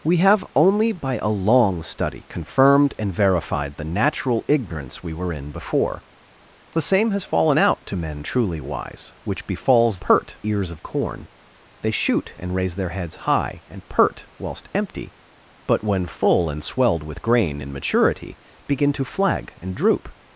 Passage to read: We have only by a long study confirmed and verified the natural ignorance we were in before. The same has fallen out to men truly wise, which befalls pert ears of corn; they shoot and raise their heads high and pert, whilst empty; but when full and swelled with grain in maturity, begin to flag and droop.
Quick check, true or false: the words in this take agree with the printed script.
true